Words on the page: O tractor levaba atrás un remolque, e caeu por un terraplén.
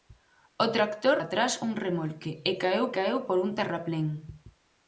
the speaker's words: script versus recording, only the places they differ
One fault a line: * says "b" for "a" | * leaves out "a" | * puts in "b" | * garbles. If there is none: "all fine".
* leaves out "levaba"
* puts in "caeu"